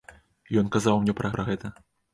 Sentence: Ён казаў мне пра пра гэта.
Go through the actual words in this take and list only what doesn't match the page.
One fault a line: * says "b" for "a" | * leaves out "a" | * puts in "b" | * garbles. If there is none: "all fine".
all fine